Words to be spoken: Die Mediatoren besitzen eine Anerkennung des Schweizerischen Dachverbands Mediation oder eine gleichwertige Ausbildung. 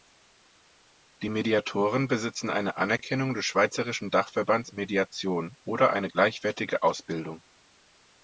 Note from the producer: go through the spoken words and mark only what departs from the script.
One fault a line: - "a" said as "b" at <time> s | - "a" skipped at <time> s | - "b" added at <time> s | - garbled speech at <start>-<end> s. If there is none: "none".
none